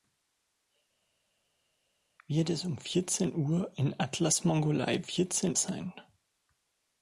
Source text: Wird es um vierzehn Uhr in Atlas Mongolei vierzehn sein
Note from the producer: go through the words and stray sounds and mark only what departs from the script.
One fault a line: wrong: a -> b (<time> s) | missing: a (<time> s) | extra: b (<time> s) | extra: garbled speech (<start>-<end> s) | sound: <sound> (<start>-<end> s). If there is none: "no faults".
no faults